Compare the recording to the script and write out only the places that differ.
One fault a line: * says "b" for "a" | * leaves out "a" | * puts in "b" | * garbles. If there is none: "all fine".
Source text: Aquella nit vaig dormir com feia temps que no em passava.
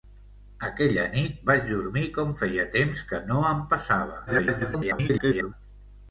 * garbles